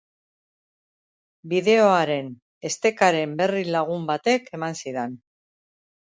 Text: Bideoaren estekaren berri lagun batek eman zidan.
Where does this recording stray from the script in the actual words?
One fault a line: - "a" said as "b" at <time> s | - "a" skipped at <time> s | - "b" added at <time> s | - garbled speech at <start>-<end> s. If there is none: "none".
none